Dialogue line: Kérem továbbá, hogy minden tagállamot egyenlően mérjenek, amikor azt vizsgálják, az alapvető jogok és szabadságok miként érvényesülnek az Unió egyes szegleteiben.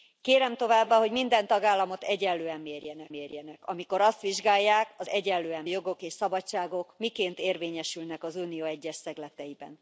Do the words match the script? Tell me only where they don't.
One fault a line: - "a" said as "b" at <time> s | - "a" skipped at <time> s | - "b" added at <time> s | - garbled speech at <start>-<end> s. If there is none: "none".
- "mérjenek" added at 3.1 s
- "alapvető" said as "egyenlően" at 5.1 s